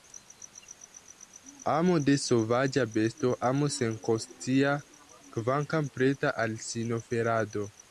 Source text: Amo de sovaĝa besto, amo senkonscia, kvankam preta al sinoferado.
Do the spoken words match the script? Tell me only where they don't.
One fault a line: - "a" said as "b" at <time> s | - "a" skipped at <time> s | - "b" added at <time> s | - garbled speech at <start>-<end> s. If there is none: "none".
none